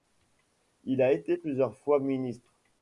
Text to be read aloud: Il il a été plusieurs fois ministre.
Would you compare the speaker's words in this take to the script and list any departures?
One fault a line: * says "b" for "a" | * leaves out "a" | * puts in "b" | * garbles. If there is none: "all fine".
* leaves out "il"